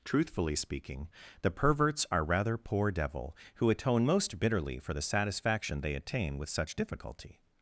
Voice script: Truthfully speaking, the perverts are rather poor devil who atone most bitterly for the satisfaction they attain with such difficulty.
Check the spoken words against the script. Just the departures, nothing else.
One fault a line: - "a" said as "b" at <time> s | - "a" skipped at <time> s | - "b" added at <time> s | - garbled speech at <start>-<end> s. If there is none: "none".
none